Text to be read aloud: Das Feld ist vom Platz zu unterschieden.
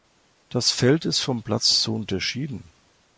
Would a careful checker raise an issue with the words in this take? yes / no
no